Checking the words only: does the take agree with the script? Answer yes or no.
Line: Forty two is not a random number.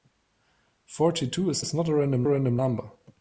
no